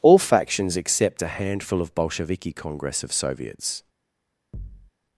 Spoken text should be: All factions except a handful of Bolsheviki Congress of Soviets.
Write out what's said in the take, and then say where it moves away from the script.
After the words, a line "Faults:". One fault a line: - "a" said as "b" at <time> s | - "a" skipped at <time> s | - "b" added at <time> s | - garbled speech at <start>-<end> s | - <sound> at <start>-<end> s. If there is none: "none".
All factions except a handful of Bolsheviki Congress of Soviets.
Faults:
- thud at 4.5-4.9 s